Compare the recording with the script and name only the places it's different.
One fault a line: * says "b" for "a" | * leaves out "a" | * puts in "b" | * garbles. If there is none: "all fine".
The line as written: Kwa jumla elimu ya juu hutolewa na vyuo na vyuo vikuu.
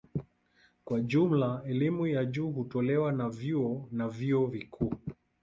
all fine